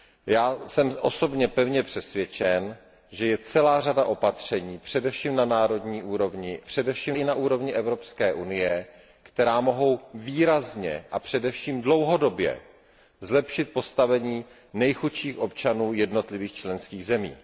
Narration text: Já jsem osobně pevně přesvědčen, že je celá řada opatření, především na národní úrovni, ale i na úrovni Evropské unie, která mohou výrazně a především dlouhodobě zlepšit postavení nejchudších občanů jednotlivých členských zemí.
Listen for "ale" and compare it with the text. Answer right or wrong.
wrong